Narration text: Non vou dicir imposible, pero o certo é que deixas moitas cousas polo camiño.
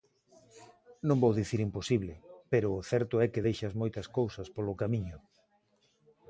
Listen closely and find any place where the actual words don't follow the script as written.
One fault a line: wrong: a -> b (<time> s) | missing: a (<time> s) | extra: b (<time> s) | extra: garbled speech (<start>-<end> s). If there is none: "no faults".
no faults